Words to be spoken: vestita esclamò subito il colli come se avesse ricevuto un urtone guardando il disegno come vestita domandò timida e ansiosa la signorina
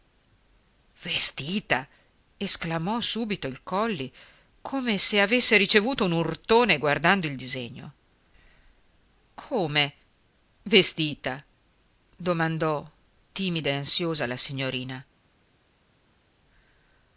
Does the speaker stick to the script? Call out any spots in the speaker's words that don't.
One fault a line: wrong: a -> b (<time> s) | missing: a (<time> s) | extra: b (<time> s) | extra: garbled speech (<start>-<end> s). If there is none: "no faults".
no faults